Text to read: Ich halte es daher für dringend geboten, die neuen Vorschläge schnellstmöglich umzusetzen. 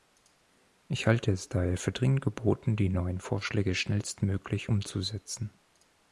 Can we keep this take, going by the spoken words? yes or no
yes